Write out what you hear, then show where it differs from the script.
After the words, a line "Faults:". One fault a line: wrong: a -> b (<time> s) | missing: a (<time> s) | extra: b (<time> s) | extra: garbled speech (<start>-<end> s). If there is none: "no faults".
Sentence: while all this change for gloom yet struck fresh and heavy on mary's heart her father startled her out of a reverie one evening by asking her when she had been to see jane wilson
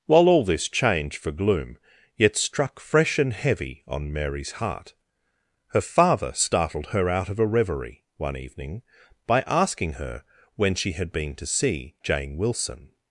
while all this change for gloom yet struck fresh and heavy on mary's heart her father startled her out of a reverie one evening by asking her when she had been to see jane wilson
Faults:
no faults